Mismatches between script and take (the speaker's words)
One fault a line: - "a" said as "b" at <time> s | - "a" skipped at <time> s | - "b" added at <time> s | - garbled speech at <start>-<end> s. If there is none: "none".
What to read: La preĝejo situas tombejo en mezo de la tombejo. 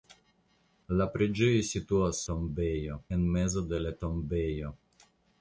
none